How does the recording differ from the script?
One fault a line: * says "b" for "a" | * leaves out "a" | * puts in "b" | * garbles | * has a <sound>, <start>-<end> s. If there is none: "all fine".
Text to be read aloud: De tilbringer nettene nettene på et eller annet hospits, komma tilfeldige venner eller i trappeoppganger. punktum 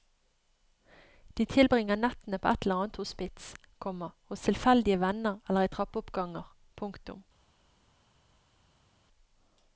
* leaves out "nettene"
* puts in "hos"